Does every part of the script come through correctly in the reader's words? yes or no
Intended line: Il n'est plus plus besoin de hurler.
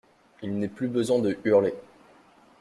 no